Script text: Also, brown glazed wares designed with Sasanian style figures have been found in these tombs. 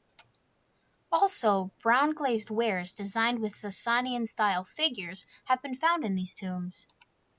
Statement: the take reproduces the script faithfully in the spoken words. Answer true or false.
true